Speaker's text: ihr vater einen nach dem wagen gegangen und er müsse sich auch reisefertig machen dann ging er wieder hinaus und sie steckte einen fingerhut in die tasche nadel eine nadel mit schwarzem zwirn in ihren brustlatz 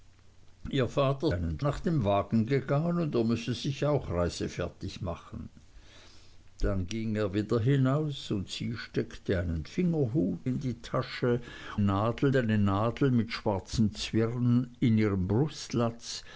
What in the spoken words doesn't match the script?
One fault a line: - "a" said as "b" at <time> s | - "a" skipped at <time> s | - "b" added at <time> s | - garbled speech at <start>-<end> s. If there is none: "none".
none